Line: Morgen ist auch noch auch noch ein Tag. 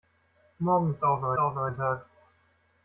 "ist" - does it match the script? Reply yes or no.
yes